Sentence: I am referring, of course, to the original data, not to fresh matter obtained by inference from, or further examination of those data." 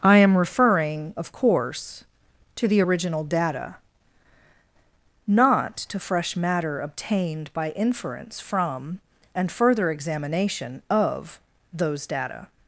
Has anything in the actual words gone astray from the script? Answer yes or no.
yes